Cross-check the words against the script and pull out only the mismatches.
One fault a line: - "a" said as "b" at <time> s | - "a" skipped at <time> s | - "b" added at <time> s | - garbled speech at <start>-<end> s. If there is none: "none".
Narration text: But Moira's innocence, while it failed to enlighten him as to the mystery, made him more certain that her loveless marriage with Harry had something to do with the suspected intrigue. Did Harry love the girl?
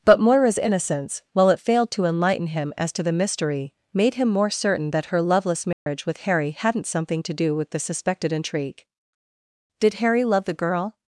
- "had" said as "hadn't" at 6.5 s